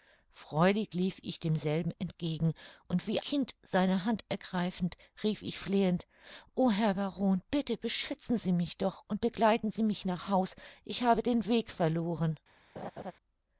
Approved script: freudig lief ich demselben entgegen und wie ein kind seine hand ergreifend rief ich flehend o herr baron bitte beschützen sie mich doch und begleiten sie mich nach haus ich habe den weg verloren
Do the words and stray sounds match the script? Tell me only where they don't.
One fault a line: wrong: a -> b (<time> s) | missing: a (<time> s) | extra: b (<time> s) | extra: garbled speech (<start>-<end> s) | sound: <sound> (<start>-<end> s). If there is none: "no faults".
missing: ein (3.2 s)
sound: laugh (12.8-13.1 s)